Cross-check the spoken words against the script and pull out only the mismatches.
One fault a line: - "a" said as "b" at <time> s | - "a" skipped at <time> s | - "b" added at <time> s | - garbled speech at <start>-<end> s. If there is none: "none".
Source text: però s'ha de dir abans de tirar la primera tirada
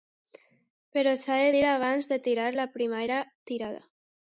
none